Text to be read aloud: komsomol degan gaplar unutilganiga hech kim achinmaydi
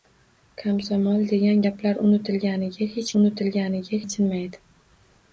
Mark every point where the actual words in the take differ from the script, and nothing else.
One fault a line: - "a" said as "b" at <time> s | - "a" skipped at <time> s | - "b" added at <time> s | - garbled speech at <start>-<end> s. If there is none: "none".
- "kim" said as "unutilganiga" at 3.2 s